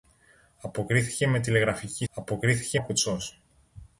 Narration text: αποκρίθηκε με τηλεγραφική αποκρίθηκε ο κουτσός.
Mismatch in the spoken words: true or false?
false